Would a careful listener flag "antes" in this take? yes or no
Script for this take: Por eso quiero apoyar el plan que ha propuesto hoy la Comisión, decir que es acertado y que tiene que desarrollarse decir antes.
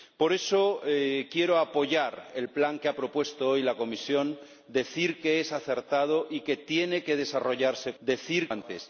no